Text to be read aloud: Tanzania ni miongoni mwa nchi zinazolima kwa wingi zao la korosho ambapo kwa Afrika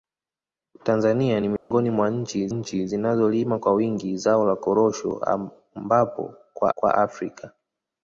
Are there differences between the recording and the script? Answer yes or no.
yes